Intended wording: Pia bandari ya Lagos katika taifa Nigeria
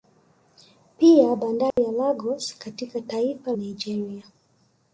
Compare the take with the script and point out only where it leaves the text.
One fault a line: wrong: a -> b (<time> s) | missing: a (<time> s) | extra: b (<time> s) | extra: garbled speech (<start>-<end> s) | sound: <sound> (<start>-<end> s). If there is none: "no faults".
sound: dropout (1.7-1.8 s)